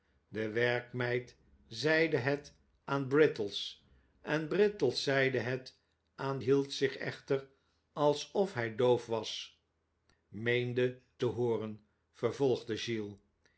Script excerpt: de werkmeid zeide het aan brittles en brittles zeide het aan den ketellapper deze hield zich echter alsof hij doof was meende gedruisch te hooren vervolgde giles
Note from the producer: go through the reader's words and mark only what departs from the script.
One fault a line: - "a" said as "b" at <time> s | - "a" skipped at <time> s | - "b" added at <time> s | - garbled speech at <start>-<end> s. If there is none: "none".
- "den ketellapper deze" skipped at 6.4 s
- "gedruisch" skipped at 11.0 s